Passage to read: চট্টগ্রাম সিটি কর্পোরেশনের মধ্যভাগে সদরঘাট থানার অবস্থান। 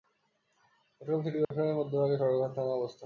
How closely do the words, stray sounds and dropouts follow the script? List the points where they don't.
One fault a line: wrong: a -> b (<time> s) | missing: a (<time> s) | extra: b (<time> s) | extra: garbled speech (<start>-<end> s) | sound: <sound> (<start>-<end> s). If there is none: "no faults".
sound: dropout (1.4-1.5 s)